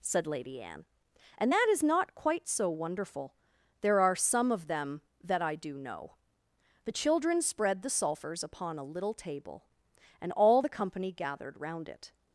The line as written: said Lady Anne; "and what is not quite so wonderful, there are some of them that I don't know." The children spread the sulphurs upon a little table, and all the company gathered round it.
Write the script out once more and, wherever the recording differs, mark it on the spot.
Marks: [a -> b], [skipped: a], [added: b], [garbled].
said Lady Anne; "and [what -> that] is not quite so wonderful, there are some of them that I [don't -> do] know." The children spread the sulphurs upon a little table, and all the company gathered round it.